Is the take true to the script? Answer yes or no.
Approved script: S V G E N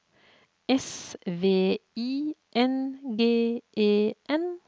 no